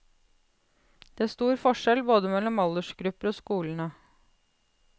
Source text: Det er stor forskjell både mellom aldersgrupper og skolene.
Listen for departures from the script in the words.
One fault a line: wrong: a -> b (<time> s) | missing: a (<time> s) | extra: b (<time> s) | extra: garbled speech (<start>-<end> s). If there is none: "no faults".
no faults